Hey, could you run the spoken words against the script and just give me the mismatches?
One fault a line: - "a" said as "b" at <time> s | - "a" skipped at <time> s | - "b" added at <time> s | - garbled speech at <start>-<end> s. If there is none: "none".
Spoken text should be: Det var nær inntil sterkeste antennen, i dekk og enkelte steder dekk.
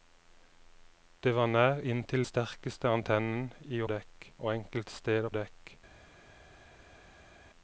none